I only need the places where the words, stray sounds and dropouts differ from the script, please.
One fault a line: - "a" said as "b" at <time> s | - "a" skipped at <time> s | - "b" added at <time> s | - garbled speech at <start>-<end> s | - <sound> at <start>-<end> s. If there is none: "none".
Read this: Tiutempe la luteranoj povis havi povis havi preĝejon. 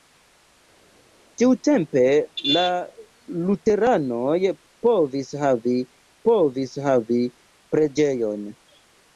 none